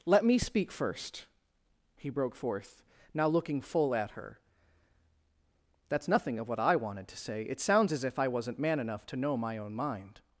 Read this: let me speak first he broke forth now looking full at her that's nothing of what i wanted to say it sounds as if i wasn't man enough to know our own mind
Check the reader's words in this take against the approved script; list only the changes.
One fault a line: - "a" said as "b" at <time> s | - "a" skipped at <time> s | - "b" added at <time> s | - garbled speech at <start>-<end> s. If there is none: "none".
- "our" said as "my" at 9.4 s